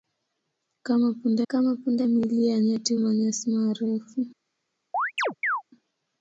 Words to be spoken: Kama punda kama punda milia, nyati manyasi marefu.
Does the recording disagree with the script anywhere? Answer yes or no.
no